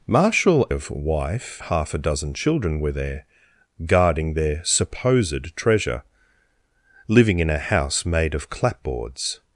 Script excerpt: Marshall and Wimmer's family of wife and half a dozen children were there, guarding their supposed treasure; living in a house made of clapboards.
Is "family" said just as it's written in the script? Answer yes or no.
no